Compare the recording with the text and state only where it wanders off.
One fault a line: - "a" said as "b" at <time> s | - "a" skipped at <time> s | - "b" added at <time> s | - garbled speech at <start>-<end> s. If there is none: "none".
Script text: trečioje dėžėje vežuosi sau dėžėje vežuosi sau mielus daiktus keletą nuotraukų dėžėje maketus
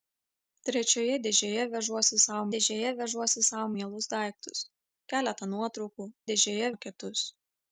none